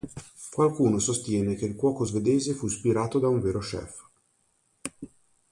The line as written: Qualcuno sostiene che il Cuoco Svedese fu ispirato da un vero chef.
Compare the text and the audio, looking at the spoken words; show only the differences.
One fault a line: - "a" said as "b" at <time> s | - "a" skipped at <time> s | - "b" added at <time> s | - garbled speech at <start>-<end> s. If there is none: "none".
none